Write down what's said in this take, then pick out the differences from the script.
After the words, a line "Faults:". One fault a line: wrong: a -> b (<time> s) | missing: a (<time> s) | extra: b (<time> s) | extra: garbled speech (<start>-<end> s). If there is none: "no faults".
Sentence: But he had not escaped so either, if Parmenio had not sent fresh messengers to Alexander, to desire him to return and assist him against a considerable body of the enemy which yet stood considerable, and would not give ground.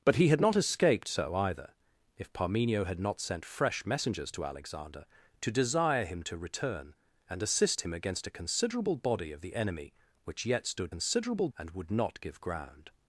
But he had not escaped so either, if Parmenio had not sent fresh messengers to Alexander, to desire him to return and assist him against a considerable body of the enemy which yet stood considerable, and would not give ground.
Faults:
no faults